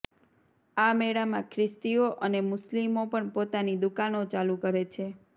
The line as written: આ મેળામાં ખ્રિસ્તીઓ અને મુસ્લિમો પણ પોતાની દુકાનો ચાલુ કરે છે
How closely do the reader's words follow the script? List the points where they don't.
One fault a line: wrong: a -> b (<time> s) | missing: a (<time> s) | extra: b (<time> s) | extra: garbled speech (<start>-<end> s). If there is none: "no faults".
no faults